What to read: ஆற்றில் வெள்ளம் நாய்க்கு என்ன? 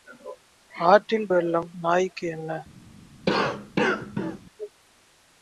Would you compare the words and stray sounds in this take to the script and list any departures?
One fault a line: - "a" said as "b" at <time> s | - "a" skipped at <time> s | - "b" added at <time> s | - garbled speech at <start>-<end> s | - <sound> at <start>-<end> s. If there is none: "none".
- cough at 3.3-4.4 s